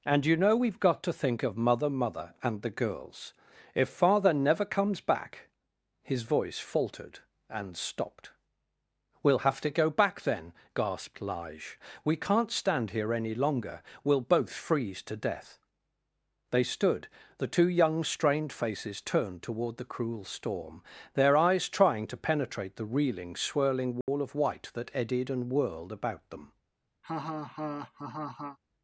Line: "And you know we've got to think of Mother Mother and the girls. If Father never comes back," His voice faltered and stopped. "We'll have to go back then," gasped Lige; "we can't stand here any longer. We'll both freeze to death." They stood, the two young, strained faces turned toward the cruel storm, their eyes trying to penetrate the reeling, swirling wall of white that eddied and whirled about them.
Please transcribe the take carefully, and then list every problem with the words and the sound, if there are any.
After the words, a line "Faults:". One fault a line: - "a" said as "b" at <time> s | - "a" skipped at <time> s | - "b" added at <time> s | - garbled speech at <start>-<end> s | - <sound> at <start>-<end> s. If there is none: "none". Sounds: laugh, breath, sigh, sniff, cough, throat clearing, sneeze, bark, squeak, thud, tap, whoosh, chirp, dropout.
"And you know we've got to think of Mother Mother and the girls. If Father never comes back," His voice faltered and stopped. "We'll have to go back then," gasped Lige; "we can't stand here any longer. We'll both freeze to death." They stood, the two young, strained faces turned toward the cruel storm, their eyes trying to penetrate the reeling, swirling wall of white that eddied and whirled about them.
Faults:
- dropout at 24.0-24.1 s
- laugh at 27.0-28.6 s